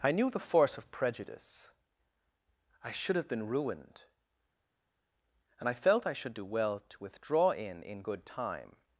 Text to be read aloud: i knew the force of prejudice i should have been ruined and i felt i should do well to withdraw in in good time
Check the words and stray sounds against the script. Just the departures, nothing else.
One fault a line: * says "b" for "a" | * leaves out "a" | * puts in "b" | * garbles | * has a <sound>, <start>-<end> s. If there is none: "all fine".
all fine